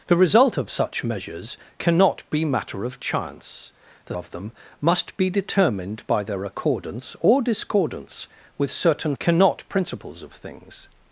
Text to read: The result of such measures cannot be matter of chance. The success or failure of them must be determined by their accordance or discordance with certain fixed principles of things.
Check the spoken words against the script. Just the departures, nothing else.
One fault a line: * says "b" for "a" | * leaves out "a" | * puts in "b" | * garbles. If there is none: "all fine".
* leaves out "success or failure"
* says "cannot" for "fixed"